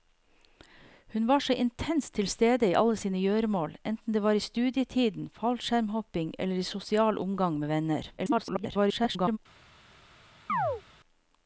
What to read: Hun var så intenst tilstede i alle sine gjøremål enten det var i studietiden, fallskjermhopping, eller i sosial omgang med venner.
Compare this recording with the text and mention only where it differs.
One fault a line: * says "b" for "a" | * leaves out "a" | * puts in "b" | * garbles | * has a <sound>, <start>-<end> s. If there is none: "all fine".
* garbles
* has a chirp, 10.5-10.8 s